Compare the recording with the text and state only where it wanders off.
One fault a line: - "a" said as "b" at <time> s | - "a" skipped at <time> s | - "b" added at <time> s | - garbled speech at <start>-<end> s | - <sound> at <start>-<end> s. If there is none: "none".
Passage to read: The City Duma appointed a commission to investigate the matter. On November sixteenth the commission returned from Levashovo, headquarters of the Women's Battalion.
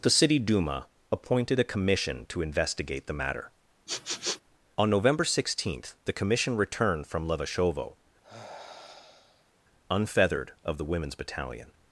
- sniff at 3.9-4.4 s
- sigh at 8.2-9.5 s
- "headquarters" said as "unfeathered" at 9.9 s